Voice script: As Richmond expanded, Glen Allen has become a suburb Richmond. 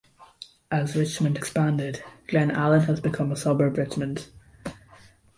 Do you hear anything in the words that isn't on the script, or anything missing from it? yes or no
no